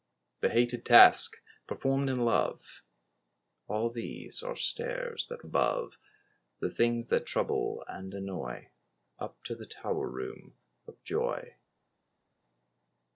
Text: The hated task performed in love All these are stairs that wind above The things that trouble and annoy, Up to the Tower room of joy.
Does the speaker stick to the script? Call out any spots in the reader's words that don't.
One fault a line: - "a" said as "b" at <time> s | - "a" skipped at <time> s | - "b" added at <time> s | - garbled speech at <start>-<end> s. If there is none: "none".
- "wind" skipped at 5.5 s